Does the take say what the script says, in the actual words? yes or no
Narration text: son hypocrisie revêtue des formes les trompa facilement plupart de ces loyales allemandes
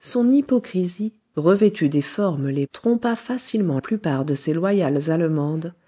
yes